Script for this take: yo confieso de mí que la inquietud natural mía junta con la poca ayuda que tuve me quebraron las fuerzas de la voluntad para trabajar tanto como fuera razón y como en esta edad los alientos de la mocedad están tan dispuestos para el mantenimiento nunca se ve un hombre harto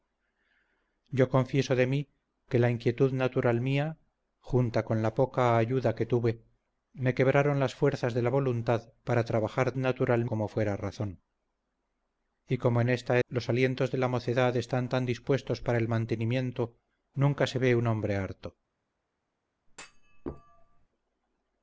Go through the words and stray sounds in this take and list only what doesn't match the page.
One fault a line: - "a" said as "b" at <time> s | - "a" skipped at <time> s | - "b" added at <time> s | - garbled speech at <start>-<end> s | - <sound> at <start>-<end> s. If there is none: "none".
- "tanto" said as "natural" at 9.8 s
- "edad" skipped at 13.2 s
- thud at 19.7-20.9 s